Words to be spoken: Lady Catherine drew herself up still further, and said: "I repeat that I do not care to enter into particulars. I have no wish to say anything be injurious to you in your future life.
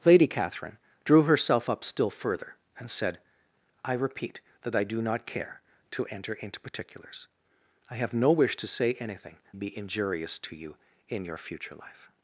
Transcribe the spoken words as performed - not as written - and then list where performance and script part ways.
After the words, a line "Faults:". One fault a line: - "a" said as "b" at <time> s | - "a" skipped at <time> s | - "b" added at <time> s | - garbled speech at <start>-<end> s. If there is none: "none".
Lady Catherine drew herself up still further, and said: "I repeat that I do not care to enter into particulars. I have no wish to say anything be injurious to you in your future life.
Faults:
none